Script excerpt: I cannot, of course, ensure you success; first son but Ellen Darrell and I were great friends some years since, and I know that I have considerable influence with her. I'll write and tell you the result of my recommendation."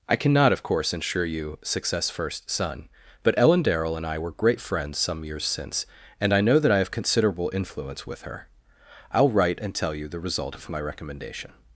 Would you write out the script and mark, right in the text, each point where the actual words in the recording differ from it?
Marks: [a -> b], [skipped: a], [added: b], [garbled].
I cannot, of course, ensure you success; first son but Ellen Darrell and I were great friends some years since, and I know that I have considerable influence with her. I'll write and tell you the result of my recommendation."